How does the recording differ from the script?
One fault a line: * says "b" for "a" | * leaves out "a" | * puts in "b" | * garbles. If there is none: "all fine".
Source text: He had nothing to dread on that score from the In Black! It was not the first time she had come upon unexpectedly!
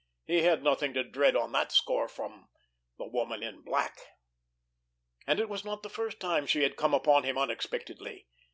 * puts in "Woman"
* puts in "And"
* puts in "him"